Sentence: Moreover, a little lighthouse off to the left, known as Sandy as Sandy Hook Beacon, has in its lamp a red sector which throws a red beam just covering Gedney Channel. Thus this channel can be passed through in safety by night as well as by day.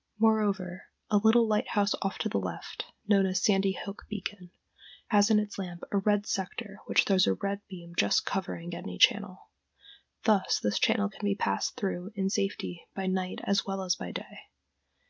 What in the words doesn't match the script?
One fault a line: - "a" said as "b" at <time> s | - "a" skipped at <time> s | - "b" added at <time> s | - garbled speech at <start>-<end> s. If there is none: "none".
- "as Sandy" skipped at 3.7 s